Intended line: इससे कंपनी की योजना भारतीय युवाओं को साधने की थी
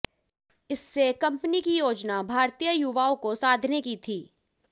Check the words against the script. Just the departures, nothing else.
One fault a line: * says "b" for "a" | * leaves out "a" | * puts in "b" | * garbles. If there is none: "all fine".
all fine